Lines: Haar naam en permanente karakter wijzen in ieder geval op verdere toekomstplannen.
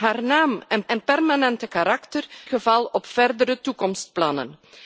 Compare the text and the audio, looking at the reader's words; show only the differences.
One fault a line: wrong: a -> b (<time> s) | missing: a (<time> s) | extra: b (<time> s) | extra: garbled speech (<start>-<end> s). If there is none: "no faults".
extra: en (0.9 s)
missing: wijzen in ieder (2.3 s)